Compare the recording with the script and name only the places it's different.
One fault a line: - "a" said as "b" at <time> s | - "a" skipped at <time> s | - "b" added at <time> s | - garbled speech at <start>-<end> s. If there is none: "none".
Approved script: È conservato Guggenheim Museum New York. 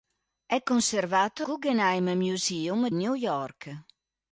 none